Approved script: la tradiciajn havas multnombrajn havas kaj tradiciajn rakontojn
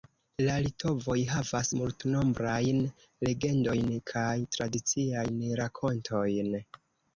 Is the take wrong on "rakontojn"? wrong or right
right